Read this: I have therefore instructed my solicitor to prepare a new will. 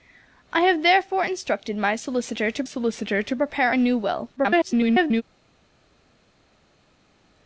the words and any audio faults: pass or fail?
fail